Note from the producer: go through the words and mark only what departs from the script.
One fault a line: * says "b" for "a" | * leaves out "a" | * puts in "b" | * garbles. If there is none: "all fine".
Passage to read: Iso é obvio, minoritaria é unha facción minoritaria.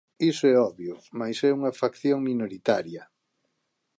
* says "mais" for "minoritaria"